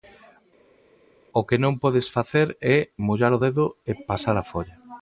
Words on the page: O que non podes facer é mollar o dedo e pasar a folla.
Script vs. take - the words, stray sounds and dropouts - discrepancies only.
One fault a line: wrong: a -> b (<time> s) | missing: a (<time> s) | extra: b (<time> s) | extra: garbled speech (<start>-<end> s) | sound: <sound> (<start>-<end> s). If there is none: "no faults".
no faults